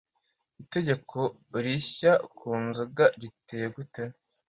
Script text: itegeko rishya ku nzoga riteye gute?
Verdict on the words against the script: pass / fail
pass